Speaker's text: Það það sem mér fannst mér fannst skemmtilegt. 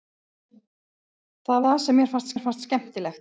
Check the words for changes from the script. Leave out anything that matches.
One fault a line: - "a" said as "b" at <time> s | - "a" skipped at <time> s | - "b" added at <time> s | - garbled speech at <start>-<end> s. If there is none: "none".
none